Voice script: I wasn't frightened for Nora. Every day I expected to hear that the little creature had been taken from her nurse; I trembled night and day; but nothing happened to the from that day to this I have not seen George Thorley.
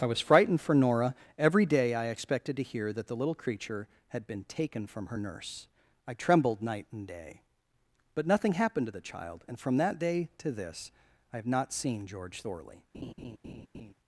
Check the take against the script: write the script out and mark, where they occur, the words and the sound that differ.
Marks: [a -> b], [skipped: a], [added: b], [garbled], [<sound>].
I [wasn't -> was] frightened for Nora. Every day I expected to hear that the little creature had been taken from her nurse; I trembled night and day; but nothing happened to the [added: child and] from that day to this I have not seen George Thorley. [laugh]